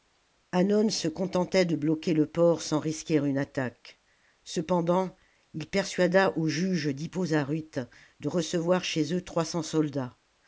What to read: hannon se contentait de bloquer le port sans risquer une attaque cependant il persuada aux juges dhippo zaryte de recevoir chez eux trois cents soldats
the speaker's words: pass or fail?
pass